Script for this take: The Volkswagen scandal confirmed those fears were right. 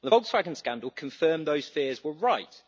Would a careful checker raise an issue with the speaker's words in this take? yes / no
no